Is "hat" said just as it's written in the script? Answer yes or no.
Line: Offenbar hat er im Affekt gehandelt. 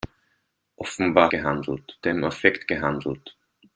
no